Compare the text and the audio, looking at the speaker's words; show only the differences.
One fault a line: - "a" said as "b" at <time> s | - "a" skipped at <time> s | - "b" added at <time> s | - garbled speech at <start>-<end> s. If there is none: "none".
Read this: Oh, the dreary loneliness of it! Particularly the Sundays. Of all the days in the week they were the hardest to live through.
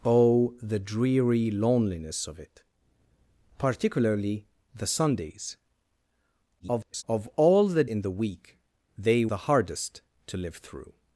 - garbled speech at 6.6-7.0 s
- "days" skipped at 7.8 s
- "were" skipped at 9.3 s